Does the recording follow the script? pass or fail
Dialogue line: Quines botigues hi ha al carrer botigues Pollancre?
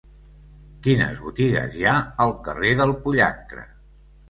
fail